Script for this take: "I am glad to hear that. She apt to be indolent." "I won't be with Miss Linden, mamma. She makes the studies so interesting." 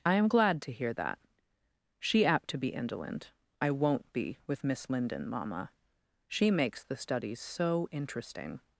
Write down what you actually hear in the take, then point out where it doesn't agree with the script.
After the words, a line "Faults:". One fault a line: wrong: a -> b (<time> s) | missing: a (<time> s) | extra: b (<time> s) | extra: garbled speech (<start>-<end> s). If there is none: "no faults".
"I am glad to hear that. She apt to be indolent." "I won't be with Miss Linden, mamma. She makes the studies so interesting."
Faults:
no faults